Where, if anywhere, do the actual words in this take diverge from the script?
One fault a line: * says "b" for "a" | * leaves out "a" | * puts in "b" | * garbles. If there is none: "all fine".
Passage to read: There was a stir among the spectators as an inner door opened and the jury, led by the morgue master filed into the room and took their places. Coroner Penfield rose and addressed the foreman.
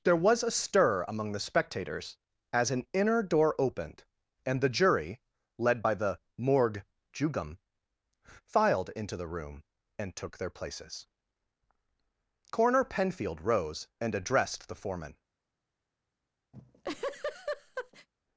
* says "jugum" for "master"